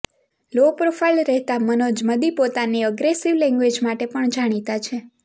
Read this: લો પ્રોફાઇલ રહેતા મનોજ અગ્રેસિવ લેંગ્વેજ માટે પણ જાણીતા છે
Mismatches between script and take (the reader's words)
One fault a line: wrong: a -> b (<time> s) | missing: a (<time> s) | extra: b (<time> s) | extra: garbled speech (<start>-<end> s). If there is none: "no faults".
extra: મદી પોતાની (2.0 s)